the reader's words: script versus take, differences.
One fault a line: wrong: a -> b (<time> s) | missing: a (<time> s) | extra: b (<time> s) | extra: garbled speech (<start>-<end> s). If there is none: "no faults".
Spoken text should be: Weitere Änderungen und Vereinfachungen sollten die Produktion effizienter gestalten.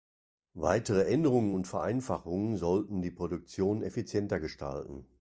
no faults